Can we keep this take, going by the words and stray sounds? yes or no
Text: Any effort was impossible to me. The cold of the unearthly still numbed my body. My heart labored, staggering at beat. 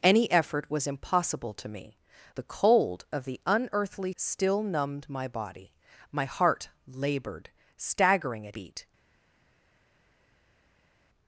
yes